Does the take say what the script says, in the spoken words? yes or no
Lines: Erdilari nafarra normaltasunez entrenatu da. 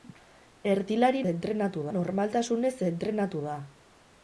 no